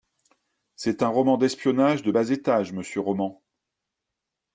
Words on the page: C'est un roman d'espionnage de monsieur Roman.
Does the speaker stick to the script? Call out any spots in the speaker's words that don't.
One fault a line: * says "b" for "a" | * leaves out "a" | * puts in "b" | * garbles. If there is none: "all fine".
* puts in "bas étage"